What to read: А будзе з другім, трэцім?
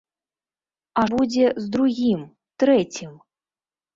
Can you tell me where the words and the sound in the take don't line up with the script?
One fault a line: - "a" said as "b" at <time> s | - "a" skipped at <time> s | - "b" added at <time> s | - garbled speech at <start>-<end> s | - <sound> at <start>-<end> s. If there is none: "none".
none